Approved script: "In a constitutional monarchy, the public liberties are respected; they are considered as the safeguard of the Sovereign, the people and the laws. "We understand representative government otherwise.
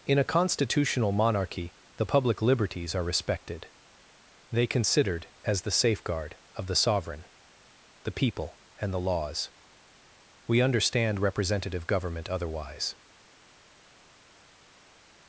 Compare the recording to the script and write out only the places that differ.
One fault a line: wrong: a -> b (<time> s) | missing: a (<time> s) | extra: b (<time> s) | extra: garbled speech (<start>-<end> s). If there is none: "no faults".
missing: are (4.7 s)